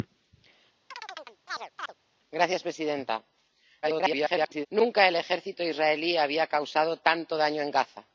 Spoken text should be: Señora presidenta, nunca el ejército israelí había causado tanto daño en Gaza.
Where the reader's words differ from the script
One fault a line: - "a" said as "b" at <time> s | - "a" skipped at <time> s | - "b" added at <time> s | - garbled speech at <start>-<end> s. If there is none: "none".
- garbled speech at 3.8-4.7 s